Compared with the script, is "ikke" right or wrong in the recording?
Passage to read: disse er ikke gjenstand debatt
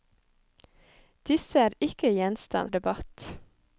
right